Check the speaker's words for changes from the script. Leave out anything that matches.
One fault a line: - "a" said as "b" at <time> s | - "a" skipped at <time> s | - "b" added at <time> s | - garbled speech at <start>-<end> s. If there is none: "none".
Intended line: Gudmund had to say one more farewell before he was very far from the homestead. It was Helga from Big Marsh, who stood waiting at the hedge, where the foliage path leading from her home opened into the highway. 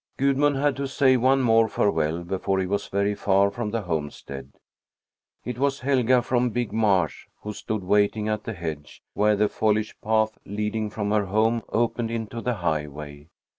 none